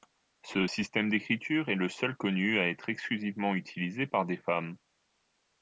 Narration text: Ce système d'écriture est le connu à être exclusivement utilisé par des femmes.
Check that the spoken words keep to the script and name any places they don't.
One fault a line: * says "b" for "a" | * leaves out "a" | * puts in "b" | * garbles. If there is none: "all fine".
* puts in "seul"